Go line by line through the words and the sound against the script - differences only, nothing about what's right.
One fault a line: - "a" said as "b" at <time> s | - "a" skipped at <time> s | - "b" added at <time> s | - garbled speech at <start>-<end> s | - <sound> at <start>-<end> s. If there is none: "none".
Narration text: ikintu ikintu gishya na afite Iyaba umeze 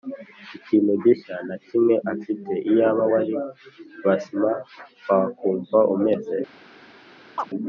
- "ikintu" skipped at 0.9 s
- "kimwe" added at 1.6 s
- "wari Basma wakumva" added at 3.1 s
- chirp at 7.4-7.5 s